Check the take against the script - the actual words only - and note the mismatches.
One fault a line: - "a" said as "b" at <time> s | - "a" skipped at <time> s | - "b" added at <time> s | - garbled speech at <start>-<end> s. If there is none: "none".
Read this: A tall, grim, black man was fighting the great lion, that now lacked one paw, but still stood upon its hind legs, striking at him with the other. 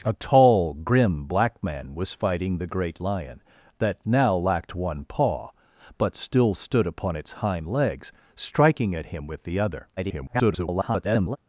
- garbled speech at 10.0-11.4 s